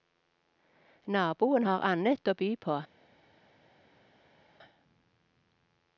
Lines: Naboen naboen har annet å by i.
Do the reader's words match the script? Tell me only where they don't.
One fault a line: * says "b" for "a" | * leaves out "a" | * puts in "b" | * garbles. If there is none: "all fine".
* leaves out "naboen"
* says "på" for "i"